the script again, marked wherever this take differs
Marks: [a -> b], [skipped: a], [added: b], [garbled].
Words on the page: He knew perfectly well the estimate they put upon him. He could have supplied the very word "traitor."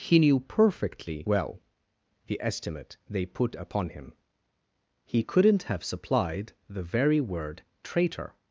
He knew perfectly well the estimate they put upon him. He [could -> couldn't] have supplied the very word "traitor."